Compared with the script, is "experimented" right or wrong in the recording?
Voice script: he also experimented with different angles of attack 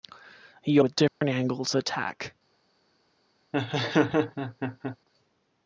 wrong